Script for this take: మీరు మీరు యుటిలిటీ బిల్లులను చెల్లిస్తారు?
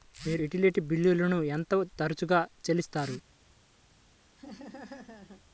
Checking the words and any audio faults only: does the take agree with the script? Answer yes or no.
no